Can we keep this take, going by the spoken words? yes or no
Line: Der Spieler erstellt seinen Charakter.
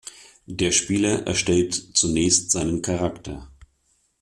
no